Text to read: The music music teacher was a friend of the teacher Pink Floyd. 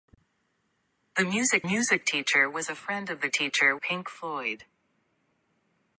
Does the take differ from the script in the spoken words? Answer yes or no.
no